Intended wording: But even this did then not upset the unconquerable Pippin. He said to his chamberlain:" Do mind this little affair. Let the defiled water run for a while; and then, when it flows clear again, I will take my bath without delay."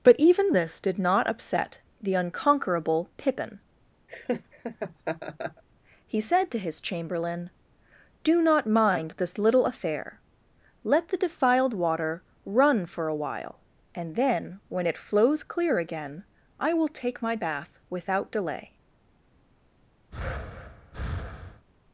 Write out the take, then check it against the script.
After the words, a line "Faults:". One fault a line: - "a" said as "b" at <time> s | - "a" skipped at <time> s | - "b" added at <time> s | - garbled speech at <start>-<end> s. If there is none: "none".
But even this did not upset the unconquerable Pippin. He said to his chamberlain:" Do not mind this little affair. Let the defiled water run for a while; and then, when it flows clear again, I will take my bath without delay."
Faults:
- "then" skipped at 1.0 s
- "not" added at 8.4 s